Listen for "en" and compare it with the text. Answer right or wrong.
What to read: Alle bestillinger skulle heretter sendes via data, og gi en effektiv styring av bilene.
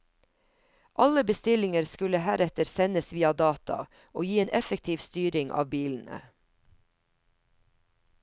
right